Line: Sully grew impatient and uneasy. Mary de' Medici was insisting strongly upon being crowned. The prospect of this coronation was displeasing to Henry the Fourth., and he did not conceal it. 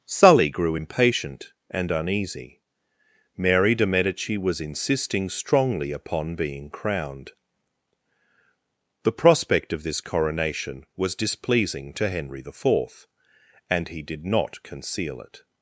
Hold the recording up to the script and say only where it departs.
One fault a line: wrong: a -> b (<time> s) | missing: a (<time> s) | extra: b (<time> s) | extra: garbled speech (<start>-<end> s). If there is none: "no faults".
no faults